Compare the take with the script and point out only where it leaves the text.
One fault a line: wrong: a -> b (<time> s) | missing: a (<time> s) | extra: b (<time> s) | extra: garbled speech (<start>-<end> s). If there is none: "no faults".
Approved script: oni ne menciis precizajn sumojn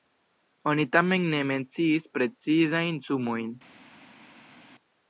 extra: tamen (1.0 s)